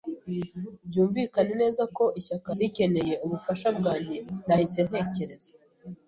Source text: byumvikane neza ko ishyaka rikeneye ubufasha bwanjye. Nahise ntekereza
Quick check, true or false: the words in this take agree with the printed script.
true